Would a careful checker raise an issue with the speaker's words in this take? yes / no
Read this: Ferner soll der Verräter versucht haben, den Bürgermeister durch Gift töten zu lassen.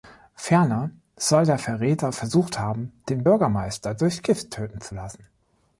no